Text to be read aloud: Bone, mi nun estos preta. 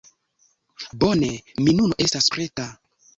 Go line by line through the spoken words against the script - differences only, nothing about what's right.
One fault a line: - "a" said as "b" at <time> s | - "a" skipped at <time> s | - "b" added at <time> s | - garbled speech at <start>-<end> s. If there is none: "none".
- "estos" said as "estas" at 2.1 s